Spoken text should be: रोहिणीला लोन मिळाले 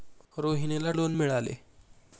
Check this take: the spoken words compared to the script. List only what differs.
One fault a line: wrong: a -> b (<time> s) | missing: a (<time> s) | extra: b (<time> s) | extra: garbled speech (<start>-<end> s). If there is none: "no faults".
no faults